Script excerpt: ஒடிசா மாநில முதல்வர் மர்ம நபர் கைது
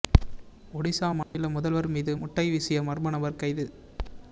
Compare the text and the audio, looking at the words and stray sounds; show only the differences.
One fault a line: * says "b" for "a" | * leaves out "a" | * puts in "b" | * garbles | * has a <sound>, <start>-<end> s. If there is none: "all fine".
* has a dropout, 1.2-1.3 s
* puts in "மீது முட்டை வீசிய"